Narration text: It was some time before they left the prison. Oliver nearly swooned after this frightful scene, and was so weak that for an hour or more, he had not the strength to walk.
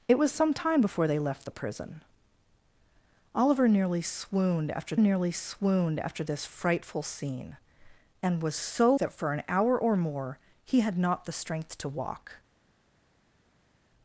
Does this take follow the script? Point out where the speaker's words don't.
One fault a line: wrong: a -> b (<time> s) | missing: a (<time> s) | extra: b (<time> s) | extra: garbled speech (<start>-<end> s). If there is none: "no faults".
extra: nearly swooned after (5.0 s)
missing: weak (8.9 s)